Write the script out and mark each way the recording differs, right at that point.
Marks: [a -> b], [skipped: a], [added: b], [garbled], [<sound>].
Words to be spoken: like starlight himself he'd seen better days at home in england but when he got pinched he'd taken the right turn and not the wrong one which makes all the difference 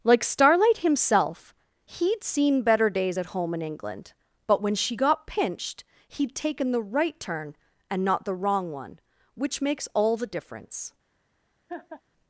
like starlight himself he'd seen better days at home in england but when [he -> she] got pinched he'd taken the right turn and not the wrong one which makes all the difference [laugh]